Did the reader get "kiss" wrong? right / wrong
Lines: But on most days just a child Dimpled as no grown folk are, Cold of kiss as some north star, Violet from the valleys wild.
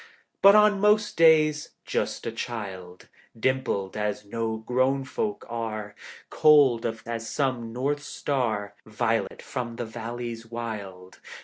wrong